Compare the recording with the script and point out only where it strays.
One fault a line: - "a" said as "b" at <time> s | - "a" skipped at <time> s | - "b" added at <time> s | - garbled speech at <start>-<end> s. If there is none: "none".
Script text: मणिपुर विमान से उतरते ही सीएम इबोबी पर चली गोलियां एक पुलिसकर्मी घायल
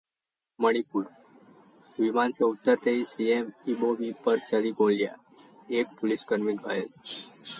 none